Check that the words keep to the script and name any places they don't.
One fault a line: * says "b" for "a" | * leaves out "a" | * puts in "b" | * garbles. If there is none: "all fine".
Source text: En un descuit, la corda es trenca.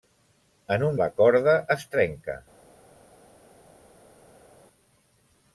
* leaves out "descuit"